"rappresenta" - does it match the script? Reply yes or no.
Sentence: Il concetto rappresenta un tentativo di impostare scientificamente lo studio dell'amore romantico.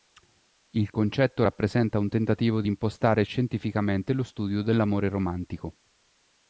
yes